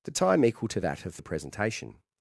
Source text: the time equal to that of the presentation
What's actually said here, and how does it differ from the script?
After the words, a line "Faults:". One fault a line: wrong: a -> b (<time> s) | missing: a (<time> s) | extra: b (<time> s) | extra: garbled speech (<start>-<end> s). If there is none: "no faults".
the time equal to that of the presentation
Faults:
no faults